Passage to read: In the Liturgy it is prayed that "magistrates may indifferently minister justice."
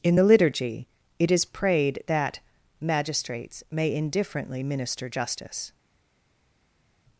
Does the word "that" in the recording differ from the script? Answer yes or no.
no